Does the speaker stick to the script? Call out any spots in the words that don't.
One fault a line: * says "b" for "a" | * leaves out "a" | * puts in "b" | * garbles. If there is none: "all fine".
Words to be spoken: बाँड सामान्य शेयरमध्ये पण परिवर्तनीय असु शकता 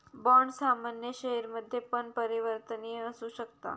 all fine